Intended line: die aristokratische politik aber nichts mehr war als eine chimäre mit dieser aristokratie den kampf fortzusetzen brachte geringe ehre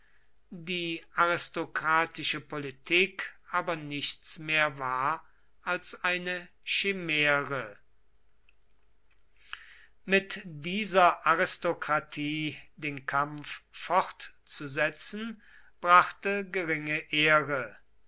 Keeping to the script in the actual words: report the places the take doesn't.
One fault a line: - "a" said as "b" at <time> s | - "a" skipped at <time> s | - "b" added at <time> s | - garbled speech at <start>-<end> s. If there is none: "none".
none